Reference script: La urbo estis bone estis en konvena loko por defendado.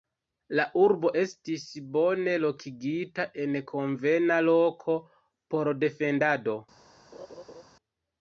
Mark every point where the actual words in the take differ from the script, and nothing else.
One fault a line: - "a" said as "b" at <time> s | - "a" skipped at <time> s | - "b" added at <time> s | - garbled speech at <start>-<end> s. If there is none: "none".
- "estis" said as "lokigita" at 2.5 s